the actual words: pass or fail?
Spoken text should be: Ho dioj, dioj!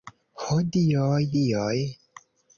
pass